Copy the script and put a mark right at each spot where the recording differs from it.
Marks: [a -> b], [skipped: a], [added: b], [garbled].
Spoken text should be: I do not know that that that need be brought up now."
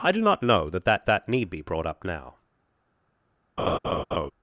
I do not know that that that need be brought up now."